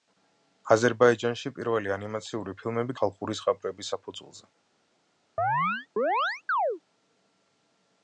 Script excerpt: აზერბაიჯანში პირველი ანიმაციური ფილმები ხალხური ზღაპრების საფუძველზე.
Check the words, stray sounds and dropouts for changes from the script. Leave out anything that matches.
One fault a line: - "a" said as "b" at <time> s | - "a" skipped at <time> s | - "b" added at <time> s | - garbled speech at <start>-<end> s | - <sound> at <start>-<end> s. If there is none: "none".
- chirp at 5.4-6.8 s